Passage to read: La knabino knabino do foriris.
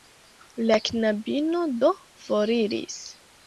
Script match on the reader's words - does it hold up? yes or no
no